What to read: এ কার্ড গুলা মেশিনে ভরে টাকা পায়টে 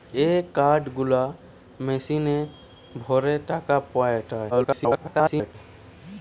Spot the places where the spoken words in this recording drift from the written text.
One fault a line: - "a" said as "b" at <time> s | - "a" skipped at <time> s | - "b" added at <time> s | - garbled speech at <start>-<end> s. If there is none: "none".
- garbled speech at 4.5-5.6 s